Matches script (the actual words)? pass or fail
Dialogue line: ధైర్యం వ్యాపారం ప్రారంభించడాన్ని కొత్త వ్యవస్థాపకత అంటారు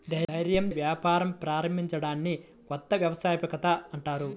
pass